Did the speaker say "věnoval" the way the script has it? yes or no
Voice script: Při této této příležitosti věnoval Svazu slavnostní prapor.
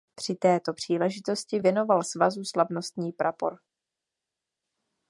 yes